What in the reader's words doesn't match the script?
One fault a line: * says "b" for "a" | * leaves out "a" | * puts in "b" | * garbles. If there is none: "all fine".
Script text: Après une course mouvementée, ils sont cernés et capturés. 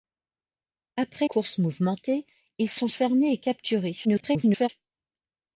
* leaves out "une"
* garbles